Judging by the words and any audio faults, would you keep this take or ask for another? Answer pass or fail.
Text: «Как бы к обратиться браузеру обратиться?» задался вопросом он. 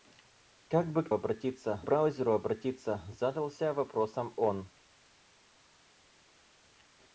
pass